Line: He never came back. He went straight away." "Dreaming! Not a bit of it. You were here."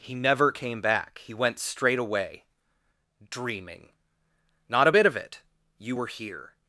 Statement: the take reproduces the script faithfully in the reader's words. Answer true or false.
true